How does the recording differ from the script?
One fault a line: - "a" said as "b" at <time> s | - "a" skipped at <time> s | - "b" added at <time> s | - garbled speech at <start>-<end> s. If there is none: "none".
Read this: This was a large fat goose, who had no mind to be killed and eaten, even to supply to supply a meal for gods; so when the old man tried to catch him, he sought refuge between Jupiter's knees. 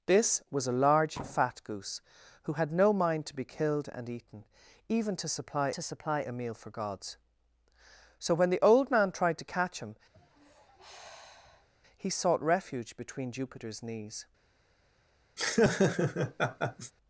none